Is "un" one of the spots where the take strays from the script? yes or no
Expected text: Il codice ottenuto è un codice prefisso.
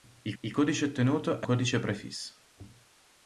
yes